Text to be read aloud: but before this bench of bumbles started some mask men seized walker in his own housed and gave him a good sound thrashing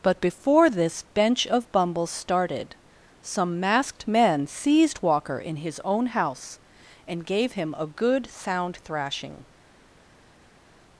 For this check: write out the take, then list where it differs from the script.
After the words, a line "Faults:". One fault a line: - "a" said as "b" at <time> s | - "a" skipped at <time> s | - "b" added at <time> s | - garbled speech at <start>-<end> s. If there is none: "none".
but before this bench of bumbles started some masked men seized walker in his own house and gave him a good sound thrashing
Faults:
- "mask" said as "masked" at 3.6 s
- "housed" said as "house" at 6.1 s